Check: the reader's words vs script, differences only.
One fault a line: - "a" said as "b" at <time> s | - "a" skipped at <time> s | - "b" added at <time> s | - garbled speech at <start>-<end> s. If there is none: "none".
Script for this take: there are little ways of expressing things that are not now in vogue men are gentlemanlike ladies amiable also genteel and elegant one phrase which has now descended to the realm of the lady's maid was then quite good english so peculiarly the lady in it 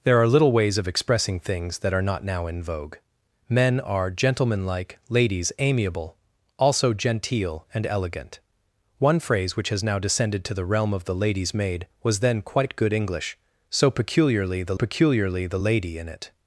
- "peculiarly the" added at 14.7 s